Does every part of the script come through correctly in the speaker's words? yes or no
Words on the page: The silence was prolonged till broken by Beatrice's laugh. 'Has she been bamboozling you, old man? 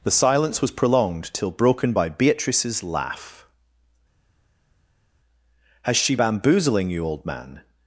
no